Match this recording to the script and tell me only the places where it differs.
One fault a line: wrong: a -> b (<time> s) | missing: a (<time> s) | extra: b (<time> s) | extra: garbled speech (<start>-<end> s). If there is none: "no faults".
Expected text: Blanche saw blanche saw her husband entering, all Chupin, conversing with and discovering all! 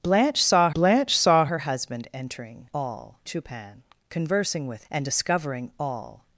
no faults